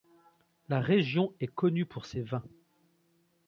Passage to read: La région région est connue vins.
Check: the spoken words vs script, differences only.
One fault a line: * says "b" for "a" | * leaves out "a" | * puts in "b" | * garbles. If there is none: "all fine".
* leaves out "région"
* puts in "pour ses"